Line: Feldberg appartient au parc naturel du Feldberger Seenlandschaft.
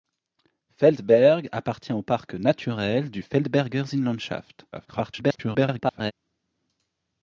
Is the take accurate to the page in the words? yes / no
no